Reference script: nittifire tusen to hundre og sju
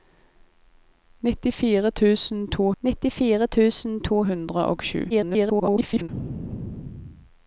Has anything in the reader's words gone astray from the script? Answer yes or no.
yes